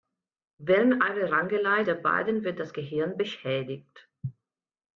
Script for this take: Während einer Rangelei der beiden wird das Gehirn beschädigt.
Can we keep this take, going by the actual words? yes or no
yes